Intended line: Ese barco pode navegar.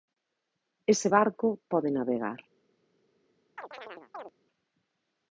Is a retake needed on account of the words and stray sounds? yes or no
yes